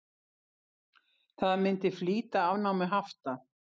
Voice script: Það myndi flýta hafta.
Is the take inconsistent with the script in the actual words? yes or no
yes